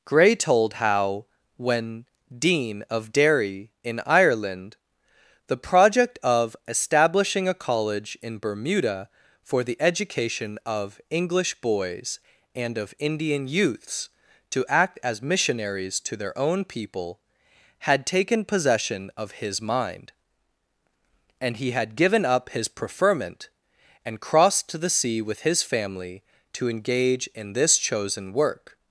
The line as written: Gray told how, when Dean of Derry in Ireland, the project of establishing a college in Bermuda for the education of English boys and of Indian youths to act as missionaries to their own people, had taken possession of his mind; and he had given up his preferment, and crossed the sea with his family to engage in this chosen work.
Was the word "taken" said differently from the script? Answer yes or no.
no